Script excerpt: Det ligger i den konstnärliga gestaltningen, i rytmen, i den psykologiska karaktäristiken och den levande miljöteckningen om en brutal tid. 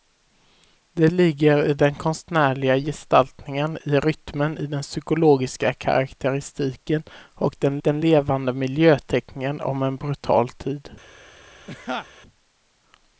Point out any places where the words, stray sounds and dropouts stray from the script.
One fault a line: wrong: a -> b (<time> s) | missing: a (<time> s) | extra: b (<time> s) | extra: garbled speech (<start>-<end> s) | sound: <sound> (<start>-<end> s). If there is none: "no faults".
extra: den (7.8 s)
sound: laugh (11.7-12.1 s)